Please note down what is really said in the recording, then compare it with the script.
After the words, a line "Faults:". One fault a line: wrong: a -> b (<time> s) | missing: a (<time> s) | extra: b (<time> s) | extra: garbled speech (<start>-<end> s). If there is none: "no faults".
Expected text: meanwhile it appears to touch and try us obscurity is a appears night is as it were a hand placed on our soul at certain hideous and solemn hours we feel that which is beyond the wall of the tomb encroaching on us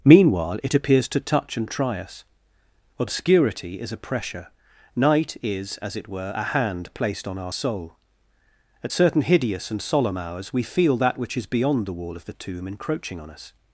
meanwhile it appears to touch and try us obscurity is a pressure night is as it were a hand placed on our soul at certain hideous and solemn hours we feel that which is beyond the wall of the tomb encroaching on us
Faults:
wrong: appears -> pressure (4.0 s)